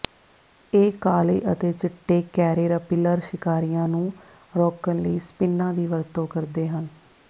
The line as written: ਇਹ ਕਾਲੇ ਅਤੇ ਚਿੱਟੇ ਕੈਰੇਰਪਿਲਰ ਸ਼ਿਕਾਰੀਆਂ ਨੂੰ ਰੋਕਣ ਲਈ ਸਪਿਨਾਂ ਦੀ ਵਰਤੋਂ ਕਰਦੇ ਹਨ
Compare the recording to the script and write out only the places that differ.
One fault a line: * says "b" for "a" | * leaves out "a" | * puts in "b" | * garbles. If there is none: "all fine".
all fine